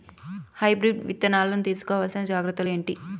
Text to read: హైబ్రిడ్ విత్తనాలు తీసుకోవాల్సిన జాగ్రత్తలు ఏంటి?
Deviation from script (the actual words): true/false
false